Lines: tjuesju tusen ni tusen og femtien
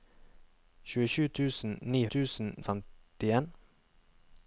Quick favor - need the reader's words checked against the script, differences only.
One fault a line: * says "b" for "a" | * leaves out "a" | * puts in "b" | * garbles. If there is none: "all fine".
all fine